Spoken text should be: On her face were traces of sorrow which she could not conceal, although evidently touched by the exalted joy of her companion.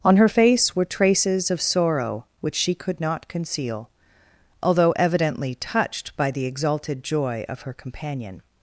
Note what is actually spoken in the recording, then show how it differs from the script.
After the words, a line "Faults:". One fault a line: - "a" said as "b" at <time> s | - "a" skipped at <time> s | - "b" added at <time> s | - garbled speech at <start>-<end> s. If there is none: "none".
On her face were traces of sorrow which she could not conceal, although evidently touched by the exalted joy of her companion.
Faults:
none